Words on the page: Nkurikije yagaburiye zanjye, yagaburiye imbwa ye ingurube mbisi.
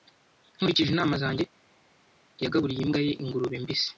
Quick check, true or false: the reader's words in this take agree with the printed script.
false